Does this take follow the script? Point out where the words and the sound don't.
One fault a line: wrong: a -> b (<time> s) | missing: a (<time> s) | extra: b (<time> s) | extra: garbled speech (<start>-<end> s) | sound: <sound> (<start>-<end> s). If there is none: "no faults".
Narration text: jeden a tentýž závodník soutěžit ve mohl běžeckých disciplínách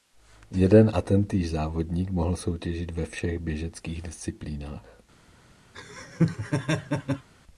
extra: mohl (2.1 s)
wrong: mohl -> všech (3.1 s)
sound: laugh (5.7-7.3 s)